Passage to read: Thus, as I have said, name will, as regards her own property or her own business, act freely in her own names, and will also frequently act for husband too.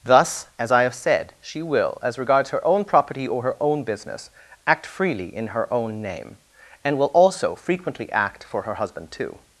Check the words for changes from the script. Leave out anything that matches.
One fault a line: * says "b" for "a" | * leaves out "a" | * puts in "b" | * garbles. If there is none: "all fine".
* says "she" for "name"
* says "name" for "names"
* puts in "her"